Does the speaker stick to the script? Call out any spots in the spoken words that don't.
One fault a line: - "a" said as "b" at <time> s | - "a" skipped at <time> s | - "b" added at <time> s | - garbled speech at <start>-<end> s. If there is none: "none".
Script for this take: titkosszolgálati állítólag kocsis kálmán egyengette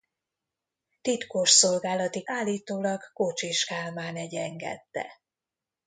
none